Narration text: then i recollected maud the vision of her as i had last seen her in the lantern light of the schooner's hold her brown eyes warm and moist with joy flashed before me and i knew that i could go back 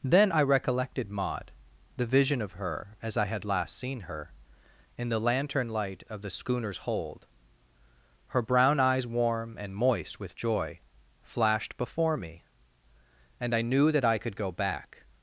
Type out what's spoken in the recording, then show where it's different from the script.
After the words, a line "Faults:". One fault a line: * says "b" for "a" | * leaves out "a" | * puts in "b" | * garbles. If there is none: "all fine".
then i recollected maud the vision of her as i had last seen her in the lantern light of the schooner's hold her brown eyes warm and moist with joy flashed before me and i knew that i could go back
Faults:
all fine